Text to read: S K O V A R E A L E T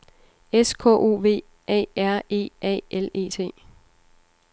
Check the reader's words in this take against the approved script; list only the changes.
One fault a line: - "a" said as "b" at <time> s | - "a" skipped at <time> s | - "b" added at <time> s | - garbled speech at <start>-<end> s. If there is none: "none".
none